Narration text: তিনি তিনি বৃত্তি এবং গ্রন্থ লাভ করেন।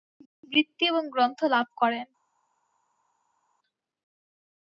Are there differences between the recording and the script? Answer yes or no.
no